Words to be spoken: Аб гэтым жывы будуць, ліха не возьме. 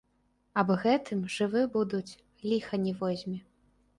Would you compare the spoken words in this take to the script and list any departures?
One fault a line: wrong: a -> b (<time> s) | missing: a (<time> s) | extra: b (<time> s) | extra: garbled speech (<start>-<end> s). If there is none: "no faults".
no faults